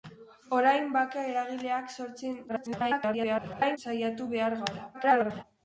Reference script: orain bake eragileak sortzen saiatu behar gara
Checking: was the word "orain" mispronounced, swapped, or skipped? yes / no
no